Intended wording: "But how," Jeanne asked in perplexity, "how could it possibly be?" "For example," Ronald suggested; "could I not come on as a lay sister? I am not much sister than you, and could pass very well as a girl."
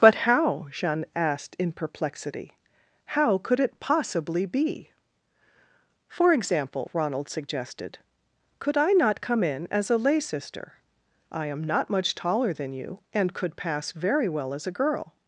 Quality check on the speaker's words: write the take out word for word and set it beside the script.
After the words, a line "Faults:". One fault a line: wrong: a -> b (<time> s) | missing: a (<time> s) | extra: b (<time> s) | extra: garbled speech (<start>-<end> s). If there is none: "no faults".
"But how," Jeanne asked in perplexity, "how could it possibly be?" "For example," Ronald suggested; "could I not come in as a lay sister? I am not much taller than you, and could pass very well as a girl."
Faults:
wrong: on -> in (9.4 s)
wrong: sister -> taller (12.2 s)